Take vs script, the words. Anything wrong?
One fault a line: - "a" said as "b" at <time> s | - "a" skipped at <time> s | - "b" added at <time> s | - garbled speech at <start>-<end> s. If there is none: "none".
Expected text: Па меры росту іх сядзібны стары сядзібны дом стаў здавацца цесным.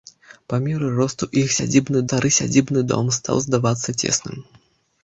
none